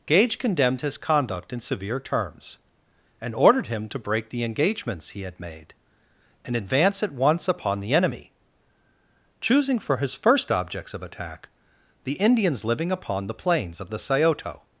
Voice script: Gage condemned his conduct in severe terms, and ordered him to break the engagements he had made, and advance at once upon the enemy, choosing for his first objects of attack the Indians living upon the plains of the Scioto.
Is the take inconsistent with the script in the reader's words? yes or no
no